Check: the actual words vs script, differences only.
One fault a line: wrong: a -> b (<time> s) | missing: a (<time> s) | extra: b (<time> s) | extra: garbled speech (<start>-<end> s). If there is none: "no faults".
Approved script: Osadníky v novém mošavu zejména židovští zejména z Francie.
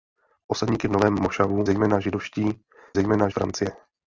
no faults